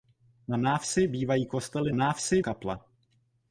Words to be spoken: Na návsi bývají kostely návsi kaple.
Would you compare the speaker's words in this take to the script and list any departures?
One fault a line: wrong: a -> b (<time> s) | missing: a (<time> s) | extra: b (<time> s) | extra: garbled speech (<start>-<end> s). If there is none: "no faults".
no faults